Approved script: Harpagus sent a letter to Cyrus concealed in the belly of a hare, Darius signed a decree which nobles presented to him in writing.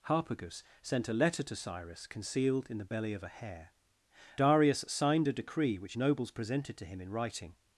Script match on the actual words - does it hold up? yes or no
yes